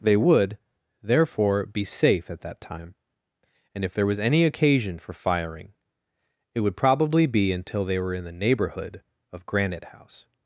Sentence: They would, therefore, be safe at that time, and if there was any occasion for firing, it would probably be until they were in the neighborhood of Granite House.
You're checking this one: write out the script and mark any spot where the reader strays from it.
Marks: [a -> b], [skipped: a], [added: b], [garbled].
They would, therefore, be safe at that time, and if there was any occasion for firing, it would probably be until they were in the neighborhood of Granite House.